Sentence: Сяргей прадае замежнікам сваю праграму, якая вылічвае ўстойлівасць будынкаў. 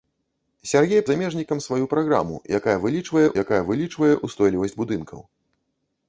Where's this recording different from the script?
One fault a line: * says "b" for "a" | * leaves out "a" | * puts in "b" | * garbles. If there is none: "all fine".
* leaves out "прадае"
* puts in "якая вылічвае"